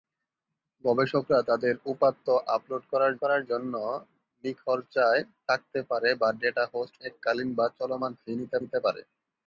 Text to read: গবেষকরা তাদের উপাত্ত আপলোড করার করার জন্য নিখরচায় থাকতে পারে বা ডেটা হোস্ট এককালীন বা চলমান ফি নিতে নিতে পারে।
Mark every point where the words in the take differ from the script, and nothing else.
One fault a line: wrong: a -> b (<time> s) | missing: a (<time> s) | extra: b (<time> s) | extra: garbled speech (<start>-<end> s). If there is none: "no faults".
no faults